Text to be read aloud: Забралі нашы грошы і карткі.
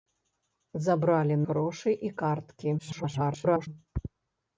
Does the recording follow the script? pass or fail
fail